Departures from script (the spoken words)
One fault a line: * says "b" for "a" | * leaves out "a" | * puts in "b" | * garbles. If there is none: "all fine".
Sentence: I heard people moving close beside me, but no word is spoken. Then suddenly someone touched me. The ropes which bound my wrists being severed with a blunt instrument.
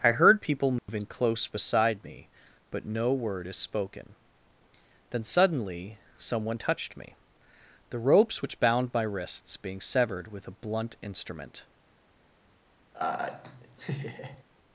all fine